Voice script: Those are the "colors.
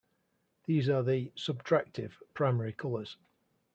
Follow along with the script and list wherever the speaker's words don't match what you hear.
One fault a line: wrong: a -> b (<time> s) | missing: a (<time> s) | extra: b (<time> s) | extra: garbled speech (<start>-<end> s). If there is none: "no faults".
wrong: Those -> These (0.6 s)
extra: subtractive primary (1.4 s)